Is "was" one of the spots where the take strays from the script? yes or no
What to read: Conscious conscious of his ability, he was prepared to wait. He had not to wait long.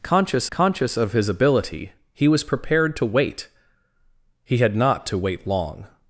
no